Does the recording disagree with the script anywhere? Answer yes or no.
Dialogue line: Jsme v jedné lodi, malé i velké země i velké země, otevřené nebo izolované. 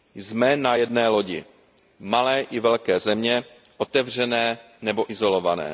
yes